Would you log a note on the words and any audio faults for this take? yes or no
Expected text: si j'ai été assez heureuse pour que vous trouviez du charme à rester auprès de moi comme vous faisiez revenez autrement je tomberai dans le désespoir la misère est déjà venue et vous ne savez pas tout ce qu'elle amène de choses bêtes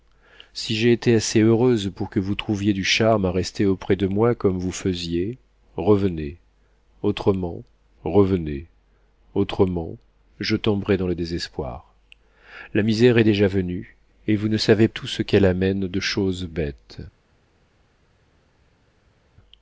yes